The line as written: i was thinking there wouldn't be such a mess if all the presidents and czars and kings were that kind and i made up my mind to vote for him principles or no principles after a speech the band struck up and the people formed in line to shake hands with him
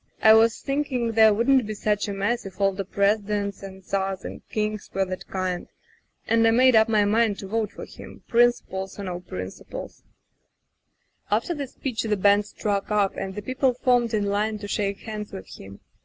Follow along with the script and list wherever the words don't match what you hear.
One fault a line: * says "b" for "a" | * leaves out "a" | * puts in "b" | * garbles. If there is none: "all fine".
* says "the" for "a"